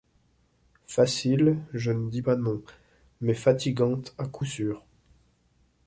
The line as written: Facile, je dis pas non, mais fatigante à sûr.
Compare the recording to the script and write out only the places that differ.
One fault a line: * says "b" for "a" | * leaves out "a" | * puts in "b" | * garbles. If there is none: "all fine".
* puts in "ne"
* puts in "coup"